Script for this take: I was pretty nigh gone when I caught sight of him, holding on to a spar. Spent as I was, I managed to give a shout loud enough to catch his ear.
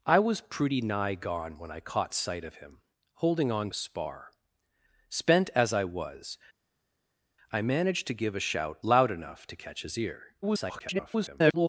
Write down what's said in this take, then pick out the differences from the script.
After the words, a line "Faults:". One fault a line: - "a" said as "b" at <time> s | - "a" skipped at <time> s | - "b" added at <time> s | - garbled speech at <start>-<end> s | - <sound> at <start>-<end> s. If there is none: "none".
I was pretty nigh gone when I caught sight of him, holding on a spar. Spent as I was, I managed to give a shout loud enough to catch his ear. [garbled]
Faults:
- "to" skipped at 3.7 s
- garbled speech at 10.4-11.7 s